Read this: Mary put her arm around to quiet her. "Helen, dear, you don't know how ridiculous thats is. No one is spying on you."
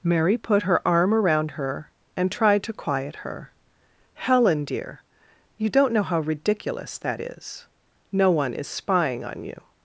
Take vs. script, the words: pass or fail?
fail